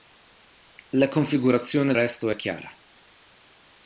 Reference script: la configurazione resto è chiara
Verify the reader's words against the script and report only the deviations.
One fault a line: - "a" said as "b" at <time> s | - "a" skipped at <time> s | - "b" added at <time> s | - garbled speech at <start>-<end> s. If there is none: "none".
none